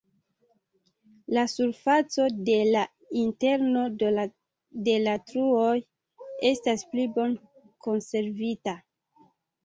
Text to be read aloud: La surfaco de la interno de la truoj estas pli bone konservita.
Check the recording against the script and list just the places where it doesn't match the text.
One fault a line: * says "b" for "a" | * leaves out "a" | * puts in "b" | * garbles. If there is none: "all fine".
all fine